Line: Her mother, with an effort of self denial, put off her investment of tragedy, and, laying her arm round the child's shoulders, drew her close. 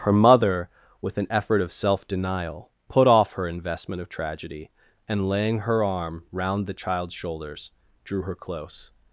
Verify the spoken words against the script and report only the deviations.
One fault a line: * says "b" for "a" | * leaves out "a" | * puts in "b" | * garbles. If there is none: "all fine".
all fine